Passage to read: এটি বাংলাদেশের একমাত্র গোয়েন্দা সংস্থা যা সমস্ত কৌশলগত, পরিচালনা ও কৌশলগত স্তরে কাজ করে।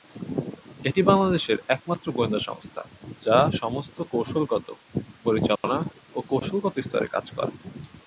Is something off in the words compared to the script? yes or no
no